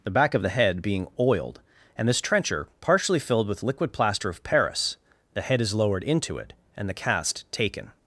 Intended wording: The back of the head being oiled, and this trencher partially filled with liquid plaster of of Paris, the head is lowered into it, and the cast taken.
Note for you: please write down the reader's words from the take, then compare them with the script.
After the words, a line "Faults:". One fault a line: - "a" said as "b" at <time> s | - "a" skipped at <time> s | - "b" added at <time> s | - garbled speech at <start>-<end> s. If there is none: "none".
The back of the head being oiled, and this trencher partially filled with liquid plaster of Paris, the head is lowered into it, and the cast taken.
Faults:
- "of" skipped at 4.4 s